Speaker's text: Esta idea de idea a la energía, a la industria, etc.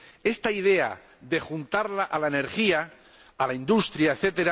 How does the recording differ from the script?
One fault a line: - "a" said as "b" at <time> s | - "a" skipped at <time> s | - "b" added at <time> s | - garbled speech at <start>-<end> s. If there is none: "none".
- "idea" said as "juntarla" at 1.4 s